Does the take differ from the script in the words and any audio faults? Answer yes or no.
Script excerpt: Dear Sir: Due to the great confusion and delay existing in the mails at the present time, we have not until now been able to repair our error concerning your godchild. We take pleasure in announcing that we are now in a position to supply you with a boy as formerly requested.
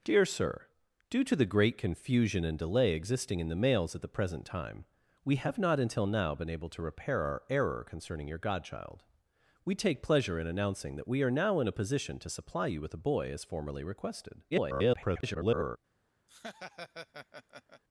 yes